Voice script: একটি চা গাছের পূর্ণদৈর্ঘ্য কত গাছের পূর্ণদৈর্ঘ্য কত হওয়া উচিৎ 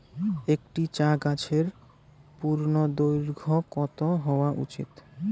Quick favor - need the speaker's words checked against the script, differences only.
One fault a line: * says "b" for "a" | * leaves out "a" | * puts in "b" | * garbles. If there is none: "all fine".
* leaves out "গাছের পূর্ণদৈর্ঘ্য কত"